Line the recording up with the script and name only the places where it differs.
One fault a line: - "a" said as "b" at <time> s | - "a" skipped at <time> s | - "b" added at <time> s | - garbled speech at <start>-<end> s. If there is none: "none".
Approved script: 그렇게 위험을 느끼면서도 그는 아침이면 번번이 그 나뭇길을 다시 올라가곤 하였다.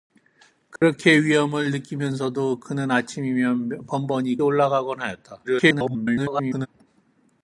- "그 나뭇길을 다시" skipped at 4.4 s
- garbled speech at 5.4-6.7 s